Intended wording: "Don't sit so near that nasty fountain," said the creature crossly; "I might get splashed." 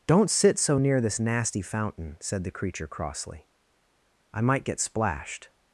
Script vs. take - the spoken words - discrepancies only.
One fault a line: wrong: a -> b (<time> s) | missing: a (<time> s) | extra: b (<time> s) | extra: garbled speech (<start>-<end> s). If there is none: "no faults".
wrong: that -> this (1.0 s)